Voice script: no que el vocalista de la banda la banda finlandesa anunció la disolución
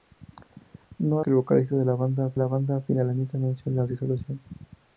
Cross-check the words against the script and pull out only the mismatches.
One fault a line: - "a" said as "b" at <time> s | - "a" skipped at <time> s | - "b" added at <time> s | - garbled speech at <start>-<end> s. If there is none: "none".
none